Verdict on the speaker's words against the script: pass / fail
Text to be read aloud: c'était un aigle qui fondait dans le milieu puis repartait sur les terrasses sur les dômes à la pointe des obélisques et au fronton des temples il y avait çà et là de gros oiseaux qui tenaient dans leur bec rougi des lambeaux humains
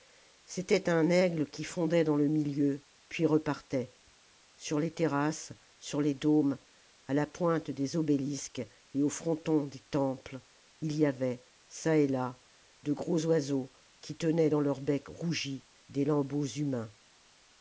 pass